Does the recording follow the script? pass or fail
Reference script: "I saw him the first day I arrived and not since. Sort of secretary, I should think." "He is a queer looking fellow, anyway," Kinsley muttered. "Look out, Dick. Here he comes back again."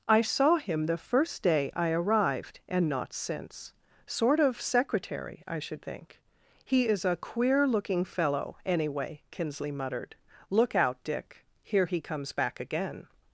pass